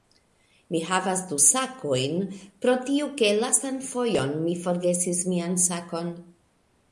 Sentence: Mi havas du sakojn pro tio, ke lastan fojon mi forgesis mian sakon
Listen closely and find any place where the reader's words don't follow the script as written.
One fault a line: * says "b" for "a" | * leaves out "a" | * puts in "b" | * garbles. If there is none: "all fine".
all fine